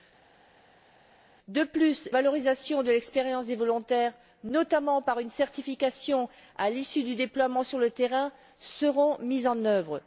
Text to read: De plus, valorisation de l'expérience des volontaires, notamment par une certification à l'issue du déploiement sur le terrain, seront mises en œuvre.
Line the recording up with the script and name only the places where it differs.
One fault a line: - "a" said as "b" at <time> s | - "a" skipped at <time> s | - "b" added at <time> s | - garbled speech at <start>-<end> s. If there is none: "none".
none